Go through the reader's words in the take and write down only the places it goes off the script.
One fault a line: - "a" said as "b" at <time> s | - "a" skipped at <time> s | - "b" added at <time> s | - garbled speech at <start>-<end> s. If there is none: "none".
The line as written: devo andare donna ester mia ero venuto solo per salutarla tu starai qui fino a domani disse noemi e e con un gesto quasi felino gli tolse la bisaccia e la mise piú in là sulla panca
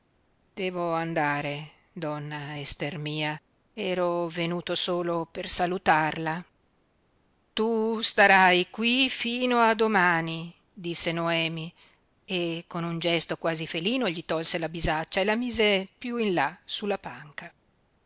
- "e" skipped at 12.6 s